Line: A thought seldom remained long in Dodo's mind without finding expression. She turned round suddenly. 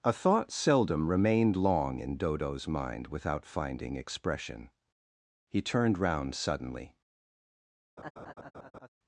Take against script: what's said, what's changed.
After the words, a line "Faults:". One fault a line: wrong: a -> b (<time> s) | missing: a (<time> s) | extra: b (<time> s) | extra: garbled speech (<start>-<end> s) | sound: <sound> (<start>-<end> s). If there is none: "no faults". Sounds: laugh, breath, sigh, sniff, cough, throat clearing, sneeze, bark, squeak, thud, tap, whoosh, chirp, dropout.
A thought seldom remained long in Dodo's mind without finding expression. He turned round suddenly.
Faults:
wrong: She -> He (5.5 s)
sound: laugh (8.0-8.9 s)